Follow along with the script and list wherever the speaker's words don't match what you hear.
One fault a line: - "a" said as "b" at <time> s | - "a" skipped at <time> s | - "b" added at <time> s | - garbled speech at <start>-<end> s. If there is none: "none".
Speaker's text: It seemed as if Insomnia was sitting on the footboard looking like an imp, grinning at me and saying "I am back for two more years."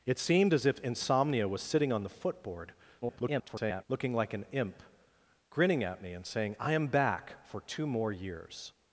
- garbled speech at 3.0-3.8 s